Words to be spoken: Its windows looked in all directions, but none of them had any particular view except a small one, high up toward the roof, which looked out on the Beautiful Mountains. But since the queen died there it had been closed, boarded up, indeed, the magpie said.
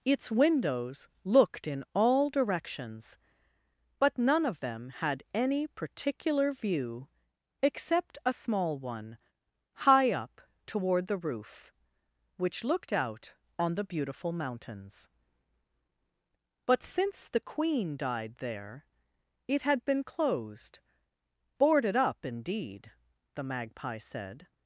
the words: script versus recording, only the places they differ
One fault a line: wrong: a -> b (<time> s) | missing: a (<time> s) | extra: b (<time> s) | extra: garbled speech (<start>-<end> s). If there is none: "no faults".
no faults